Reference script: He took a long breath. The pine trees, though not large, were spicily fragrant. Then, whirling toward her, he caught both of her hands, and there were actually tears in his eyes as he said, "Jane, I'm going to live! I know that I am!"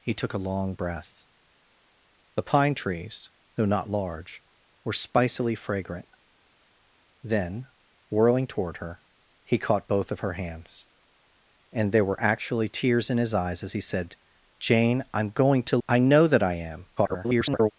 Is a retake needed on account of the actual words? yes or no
yes